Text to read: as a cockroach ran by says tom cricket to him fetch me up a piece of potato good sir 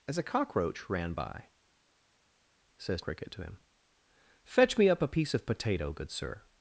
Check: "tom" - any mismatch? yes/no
yes